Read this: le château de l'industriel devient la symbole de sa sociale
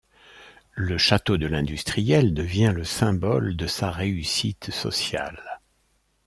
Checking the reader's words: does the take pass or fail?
fail